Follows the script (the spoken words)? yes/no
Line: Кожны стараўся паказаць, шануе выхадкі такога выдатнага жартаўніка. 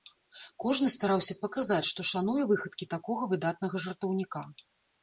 no